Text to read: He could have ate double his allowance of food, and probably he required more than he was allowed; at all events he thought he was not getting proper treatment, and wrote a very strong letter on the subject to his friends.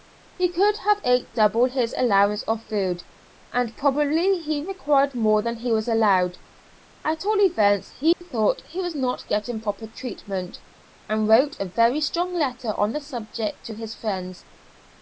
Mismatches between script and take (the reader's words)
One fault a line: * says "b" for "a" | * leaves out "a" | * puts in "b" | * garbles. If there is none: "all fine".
all fine